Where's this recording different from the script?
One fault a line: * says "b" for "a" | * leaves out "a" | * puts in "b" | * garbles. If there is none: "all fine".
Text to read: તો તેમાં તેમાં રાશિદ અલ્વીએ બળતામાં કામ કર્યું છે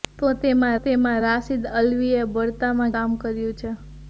all fine